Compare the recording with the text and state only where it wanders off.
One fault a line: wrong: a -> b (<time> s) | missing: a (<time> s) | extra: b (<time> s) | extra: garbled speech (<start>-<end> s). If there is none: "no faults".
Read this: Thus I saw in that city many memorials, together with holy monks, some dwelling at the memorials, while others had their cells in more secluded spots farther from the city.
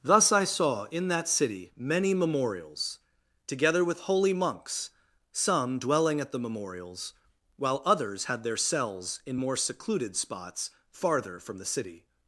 no faults